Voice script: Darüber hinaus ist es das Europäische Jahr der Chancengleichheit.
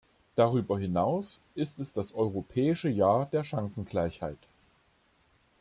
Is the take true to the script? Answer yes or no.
yes